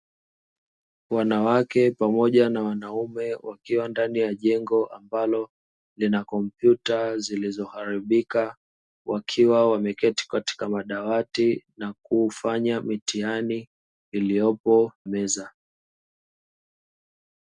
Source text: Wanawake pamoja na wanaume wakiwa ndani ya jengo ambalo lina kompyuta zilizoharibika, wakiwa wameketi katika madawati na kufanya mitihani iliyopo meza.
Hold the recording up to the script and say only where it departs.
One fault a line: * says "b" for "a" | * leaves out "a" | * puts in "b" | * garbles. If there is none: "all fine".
all fine